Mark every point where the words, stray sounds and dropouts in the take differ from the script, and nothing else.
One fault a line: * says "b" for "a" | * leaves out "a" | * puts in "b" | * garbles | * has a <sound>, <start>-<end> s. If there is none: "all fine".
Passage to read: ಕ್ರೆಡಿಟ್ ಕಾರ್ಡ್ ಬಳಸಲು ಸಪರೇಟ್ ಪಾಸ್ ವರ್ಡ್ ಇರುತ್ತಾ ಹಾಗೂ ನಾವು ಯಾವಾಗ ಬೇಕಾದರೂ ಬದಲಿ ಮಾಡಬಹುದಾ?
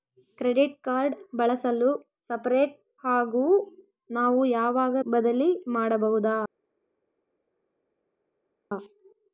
* leaves out "ಪಾಸ್ ವರ್ಡ್ ಇರುತ್ತಾ"
* leaves out "ಬೇಕಾದರೂ"